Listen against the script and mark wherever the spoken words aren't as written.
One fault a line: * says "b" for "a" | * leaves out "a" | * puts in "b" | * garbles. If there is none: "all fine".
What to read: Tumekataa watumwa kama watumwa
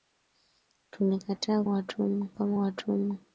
all fine